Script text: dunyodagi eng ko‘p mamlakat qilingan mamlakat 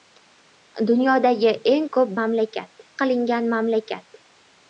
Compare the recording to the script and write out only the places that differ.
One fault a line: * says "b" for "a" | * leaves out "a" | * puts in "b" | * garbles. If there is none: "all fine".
all fine